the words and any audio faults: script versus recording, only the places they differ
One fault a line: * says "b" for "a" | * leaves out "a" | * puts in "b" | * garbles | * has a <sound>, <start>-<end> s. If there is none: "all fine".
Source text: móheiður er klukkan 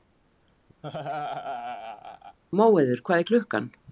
* has a laugh, 0.8-2.4 s
* puts in "hvað"